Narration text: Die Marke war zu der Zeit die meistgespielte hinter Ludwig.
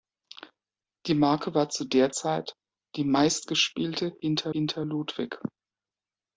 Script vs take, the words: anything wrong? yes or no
yes